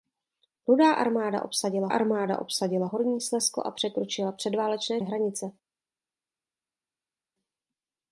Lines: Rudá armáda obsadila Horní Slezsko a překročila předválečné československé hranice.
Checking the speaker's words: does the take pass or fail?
fail